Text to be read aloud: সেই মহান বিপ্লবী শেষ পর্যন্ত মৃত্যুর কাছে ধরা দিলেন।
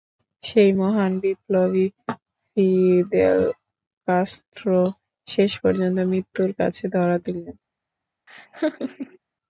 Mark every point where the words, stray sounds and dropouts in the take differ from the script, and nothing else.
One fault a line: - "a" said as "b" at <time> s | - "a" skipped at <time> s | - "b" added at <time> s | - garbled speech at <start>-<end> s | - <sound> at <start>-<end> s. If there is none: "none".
- "ফিদেল কাস্ত্রো" added at 2.5 s
- laugh at 8.3-9.2 s